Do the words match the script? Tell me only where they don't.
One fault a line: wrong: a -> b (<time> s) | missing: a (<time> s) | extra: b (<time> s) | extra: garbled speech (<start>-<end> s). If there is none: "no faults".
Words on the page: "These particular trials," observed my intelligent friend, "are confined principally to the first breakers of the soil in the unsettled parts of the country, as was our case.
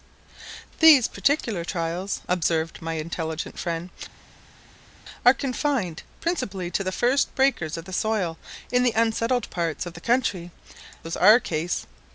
missing: as (10.5 s)